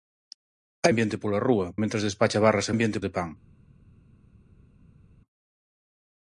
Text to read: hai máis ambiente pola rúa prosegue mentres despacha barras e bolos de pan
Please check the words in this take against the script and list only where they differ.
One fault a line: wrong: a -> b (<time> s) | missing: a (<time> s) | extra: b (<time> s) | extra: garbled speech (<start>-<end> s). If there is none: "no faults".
missing: máis (0.9 s)
missing: prosegue (1.7 s)
wrong: bolos -> ambiente (2.7 s)